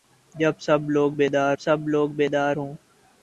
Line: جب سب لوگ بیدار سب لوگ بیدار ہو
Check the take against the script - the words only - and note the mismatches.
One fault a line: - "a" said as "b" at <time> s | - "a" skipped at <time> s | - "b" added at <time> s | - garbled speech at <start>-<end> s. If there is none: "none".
none